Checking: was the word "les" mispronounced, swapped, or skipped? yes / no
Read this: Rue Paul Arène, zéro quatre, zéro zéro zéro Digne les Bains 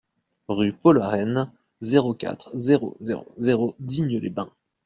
no